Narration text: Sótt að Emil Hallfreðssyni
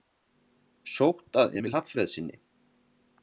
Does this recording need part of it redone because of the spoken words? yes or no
no